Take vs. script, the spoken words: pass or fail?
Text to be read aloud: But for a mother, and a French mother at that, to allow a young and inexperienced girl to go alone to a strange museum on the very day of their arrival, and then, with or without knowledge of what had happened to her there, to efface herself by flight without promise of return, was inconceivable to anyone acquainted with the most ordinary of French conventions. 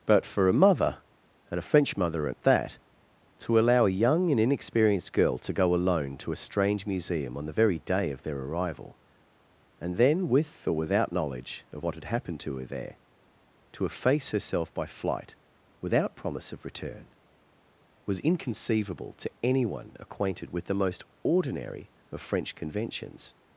pass